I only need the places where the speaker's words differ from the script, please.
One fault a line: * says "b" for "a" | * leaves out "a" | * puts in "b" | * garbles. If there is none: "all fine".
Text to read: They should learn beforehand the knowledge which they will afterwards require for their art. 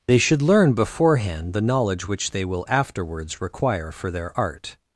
all fine